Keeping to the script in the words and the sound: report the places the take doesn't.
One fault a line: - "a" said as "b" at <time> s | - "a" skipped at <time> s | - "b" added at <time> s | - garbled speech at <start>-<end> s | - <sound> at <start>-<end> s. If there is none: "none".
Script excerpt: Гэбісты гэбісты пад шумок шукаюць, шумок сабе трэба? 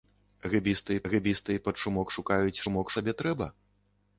none